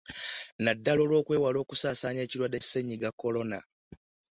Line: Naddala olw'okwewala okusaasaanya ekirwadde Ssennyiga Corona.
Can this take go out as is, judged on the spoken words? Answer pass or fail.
pass